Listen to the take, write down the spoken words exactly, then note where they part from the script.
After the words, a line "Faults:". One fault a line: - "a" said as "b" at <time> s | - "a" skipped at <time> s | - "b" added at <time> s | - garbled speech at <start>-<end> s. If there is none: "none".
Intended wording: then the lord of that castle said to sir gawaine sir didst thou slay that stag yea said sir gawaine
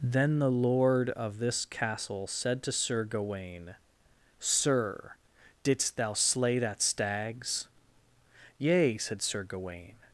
then the lord of this castle said to sir gawaine sir didst thou slay that stags yea said sir gawaine
Faults:
- "that" said as "this" at 1.4 s
- "stag" said as "stags" at 6.8 s